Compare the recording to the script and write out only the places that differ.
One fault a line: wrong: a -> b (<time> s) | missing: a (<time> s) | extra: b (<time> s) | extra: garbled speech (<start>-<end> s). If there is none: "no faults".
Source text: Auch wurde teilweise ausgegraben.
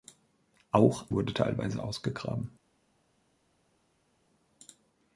no faults